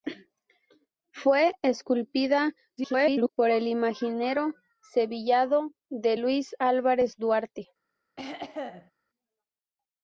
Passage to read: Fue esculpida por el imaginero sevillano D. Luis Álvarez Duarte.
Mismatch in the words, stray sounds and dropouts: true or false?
true